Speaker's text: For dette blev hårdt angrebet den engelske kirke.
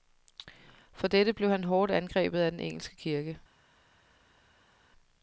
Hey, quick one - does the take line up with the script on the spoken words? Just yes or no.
no